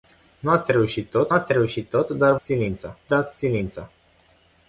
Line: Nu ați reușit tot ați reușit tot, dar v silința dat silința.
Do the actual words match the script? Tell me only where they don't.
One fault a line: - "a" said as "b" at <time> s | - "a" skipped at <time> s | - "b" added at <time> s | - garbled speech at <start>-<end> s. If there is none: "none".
none